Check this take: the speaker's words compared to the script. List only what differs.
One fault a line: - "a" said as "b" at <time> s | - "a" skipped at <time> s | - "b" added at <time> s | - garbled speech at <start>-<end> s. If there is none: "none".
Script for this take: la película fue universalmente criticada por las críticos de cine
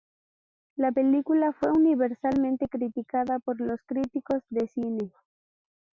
- "las" said as "los" at 3.6 s